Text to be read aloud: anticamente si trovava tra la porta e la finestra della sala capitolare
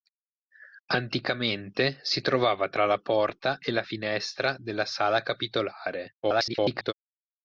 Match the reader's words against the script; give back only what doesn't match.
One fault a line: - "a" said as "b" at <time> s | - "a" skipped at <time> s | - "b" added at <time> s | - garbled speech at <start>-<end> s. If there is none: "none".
- garbled speech at 6.2-6.9 s